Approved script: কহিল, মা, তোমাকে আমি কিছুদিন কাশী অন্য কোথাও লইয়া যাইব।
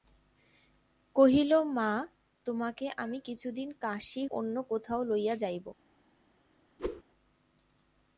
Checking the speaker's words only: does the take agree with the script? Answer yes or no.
yes